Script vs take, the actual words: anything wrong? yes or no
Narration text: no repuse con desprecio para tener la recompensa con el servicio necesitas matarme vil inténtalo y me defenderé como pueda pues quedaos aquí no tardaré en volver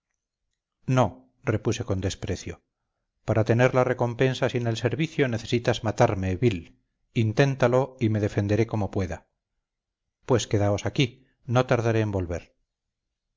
yes